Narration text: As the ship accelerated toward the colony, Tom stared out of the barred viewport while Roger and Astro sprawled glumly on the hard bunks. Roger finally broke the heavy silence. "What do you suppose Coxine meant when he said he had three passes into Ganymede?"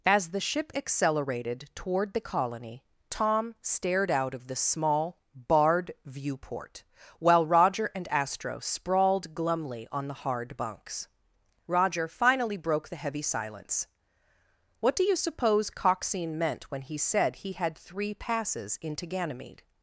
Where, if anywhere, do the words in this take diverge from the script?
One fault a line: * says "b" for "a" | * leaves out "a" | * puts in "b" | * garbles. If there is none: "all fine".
* puts in "small"